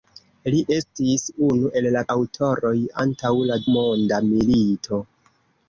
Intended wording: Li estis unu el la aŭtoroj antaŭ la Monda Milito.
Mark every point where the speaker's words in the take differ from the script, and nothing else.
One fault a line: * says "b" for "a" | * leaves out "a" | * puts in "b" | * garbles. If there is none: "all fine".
all fine